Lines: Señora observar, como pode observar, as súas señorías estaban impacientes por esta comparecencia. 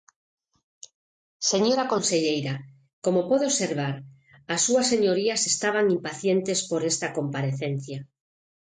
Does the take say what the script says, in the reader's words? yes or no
no